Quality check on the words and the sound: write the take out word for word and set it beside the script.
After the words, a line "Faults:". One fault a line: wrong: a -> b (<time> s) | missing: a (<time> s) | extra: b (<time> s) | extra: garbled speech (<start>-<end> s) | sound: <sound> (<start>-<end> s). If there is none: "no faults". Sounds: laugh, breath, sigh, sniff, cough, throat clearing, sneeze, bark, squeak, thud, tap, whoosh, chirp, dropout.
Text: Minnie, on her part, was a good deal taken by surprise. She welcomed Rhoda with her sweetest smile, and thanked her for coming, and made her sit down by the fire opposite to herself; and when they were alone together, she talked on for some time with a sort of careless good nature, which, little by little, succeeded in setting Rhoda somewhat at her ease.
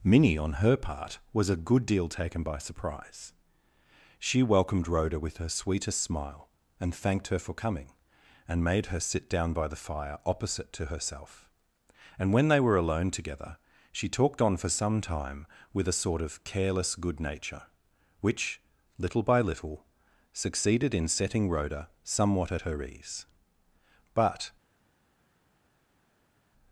Minnie, on her part, was a good deal taken by surprise. She welcomed Rhoda with her sweetest smile, and thanked her for coming, and made her sit down by the fire opposite to herself; and when they were alone together, she talked on for some time with a sort of careless good nature, which, little by little, succeeded in setting Rhoda somewhat at her ease. But
Faults:
extra: But (24.1 s)